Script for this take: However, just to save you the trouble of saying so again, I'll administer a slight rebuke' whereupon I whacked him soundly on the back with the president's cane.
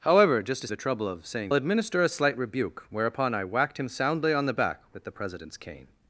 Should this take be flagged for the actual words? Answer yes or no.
yes